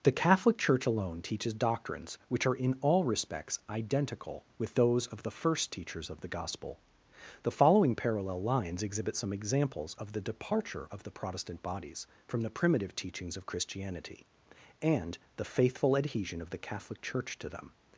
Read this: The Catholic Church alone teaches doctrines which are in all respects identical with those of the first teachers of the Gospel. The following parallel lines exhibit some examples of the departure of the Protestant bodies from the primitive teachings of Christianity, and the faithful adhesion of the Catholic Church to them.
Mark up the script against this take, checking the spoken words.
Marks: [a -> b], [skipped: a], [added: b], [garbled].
The Catholic Church alone teaches doctrines which are in all respects identical with those of the first teachers of the Gospel. The following parallel lines exhibit some examples of the departure of the Protestant bodies from the primitive teachings of Christianity, and the faithful adhesion of the Catholic Church to them.